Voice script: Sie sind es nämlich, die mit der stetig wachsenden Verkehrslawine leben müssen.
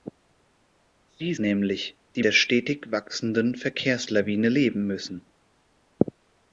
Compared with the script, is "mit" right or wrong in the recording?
wrong